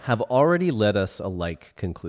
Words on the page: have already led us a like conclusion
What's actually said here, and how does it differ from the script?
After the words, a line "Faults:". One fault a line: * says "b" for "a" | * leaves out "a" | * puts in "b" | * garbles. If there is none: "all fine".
have already led us a like conclusion
Faults:
all fine